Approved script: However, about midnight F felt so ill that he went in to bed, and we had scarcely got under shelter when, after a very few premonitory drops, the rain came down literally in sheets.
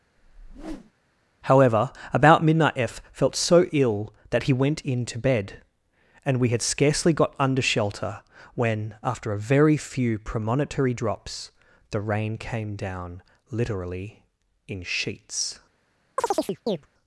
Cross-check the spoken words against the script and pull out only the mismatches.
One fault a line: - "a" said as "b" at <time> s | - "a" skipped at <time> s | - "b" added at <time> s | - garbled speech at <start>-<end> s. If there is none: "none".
none